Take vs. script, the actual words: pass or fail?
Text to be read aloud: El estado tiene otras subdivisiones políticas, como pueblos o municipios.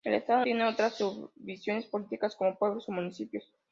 pass